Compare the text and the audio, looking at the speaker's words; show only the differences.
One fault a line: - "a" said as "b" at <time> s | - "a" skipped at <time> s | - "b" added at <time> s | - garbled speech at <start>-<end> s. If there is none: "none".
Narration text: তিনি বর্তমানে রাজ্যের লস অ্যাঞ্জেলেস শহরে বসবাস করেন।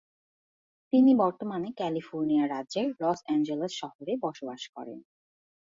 - "ক্যালিফোর্নিয়া" added at 1.8 s